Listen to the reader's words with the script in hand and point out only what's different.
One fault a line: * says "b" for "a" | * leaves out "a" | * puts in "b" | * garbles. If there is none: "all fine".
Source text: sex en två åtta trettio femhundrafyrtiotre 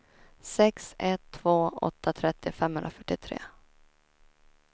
* says "ett" for "en"